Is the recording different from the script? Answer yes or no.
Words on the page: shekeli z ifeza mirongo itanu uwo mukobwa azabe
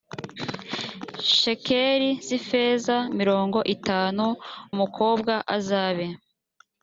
yes